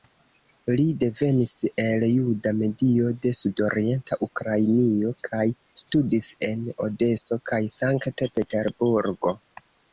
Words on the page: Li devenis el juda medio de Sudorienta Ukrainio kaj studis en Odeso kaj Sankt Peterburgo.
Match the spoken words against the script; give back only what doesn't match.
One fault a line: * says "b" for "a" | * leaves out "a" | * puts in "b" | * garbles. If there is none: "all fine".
all fine